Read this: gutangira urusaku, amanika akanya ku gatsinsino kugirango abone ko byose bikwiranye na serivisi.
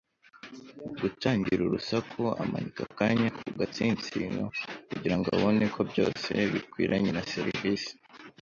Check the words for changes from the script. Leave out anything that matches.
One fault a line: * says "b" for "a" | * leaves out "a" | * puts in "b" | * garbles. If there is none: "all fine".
all fine